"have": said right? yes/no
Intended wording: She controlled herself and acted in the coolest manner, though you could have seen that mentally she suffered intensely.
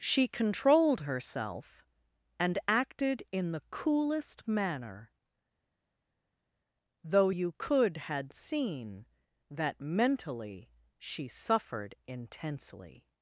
no